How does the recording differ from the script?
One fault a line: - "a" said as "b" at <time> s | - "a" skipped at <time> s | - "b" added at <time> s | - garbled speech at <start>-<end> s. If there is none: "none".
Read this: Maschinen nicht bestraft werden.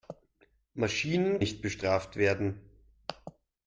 none